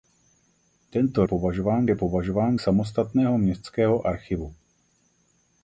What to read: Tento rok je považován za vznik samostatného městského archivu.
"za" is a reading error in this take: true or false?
true